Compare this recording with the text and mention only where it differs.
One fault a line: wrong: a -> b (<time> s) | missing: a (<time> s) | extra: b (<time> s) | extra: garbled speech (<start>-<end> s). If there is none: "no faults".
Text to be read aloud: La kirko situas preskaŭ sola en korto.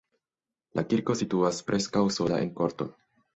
no faults